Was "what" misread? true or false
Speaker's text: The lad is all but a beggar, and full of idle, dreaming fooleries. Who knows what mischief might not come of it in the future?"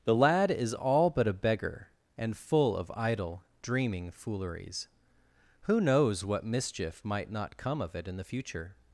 false